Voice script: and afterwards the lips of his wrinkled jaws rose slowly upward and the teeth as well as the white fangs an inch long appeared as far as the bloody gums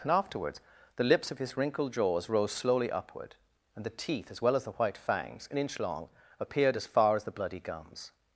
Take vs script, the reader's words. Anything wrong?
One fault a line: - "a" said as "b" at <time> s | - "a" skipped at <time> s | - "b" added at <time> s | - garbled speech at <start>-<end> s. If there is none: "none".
none